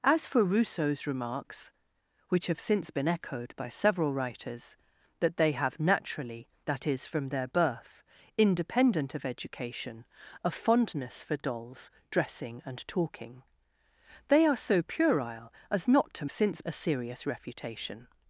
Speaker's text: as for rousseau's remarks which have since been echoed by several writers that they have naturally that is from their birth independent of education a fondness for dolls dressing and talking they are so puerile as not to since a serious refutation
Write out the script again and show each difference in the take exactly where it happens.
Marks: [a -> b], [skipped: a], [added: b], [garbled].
as for rousseau's remarks which have since been echoed by several writers that they have naturally that is from their birth independent of education a fondness for dolls dressing and talking they are so puerile as not to since a serious refutation